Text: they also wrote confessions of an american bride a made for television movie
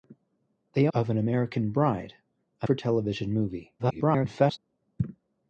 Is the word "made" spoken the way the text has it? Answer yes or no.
no